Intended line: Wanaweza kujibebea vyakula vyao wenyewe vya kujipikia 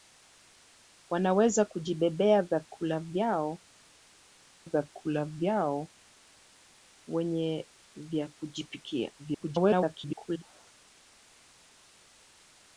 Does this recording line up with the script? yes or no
no